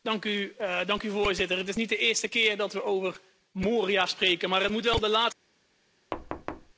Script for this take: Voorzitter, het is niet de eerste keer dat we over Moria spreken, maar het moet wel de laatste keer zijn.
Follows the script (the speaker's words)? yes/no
yes